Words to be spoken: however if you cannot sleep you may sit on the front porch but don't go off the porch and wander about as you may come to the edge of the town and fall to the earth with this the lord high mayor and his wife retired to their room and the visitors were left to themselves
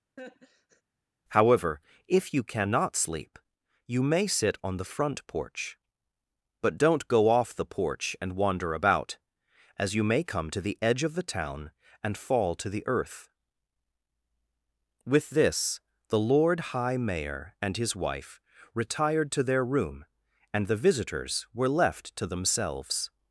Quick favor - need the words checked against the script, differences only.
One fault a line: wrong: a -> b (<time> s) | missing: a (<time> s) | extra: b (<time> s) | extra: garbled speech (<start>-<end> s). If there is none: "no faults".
no faults